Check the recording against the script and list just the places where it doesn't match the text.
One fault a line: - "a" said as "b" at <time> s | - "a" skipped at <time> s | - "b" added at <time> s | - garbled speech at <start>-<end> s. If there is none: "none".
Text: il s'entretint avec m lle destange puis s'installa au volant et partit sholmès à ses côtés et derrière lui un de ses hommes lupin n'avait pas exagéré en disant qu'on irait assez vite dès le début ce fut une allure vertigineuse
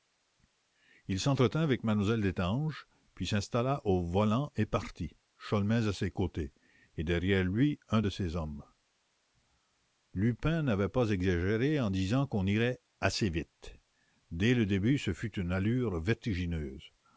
none